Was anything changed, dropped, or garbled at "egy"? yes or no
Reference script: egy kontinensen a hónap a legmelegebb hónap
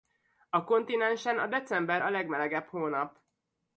yes